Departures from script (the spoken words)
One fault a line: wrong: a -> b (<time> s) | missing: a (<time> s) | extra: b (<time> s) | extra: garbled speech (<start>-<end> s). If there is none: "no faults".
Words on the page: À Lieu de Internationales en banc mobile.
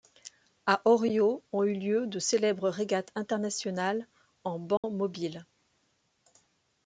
extra: Orio ont eu (0.8 s)
extra: célèbres régates (2.2 s)